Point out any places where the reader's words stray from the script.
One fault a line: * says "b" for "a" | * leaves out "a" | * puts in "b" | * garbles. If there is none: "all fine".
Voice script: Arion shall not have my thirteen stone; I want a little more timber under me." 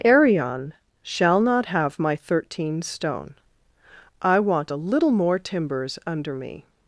* says "timbers" for "timber"